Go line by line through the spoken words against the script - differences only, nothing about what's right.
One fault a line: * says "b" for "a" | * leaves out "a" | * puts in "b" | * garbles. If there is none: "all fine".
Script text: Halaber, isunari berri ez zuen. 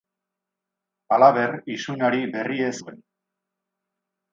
all fine